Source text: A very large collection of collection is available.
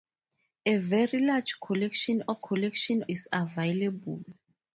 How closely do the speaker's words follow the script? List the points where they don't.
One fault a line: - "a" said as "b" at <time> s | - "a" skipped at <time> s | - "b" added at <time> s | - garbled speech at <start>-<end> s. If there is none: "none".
none